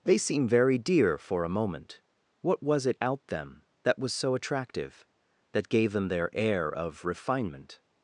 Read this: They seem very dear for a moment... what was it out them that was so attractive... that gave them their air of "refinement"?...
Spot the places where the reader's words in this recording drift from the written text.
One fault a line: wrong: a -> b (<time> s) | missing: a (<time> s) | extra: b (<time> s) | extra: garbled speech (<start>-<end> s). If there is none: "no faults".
no faults